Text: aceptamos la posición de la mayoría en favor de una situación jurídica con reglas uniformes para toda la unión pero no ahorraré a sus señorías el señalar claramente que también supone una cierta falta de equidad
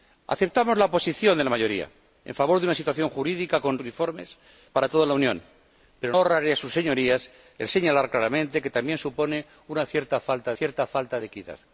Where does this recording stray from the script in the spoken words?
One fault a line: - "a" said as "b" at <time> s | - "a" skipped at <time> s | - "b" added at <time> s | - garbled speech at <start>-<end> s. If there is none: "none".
- "reglas" skipped at 3.8 s
- "no" skipped at 6.2 s
- "cierta falta" added at 10.5 s